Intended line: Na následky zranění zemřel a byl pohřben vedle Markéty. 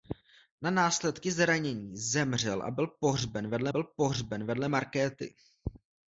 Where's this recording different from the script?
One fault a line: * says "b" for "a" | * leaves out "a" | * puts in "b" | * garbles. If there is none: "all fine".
* puts in "byl pohřben vedle"